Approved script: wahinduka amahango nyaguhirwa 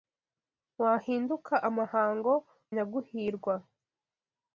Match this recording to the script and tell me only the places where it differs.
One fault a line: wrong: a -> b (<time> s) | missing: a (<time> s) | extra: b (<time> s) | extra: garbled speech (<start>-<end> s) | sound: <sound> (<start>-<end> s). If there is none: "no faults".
no faults